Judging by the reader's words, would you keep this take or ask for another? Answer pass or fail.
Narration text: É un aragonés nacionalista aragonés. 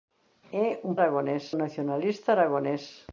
pass